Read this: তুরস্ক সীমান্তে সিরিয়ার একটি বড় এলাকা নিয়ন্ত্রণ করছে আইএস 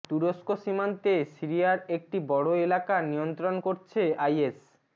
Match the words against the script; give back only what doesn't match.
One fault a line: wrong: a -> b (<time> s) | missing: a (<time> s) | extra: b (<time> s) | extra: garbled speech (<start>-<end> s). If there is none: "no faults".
no faults